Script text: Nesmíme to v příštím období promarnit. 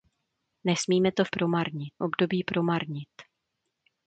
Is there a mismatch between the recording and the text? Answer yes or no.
yes